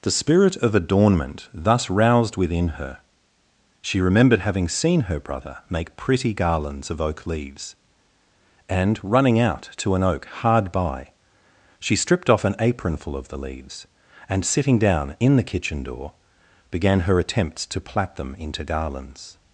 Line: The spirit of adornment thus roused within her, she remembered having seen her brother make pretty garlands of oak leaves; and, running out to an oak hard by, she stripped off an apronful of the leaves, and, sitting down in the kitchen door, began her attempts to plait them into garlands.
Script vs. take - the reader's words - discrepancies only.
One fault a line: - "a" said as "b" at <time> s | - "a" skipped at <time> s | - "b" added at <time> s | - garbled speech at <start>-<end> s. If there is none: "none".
none